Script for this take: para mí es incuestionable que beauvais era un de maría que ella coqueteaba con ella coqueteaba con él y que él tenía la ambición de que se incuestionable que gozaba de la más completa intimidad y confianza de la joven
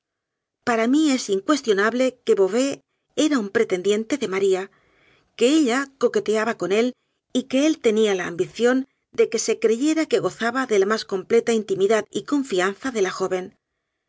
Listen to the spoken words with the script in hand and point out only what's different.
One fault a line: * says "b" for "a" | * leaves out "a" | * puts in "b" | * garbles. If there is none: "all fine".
* puts in "pretendiente"
* leaves out "ella coqueteaba con"
* says "creyera" for "incuestionable"